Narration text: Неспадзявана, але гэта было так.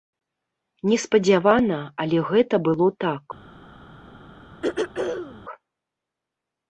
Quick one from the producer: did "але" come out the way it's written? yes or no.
yes